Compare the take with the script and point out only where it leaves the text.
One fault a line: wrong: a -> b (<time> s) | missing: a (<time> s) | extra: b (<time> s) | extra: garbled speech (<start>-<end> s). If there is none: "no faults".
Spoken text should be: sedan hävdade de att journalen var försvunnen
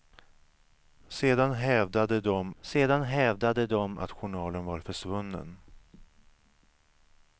extra: sedan hävdade de (2.6 s)